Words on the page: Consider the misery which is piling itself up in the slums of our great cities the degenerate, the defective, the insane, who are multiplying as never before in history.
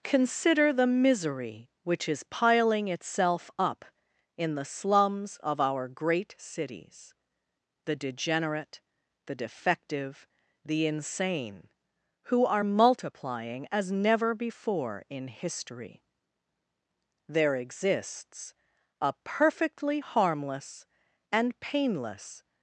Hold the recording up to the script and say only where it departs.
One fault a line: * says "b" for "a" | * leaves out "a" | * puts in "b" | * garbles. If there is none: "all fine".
* puts in "There exists a perfectly harmless and painless"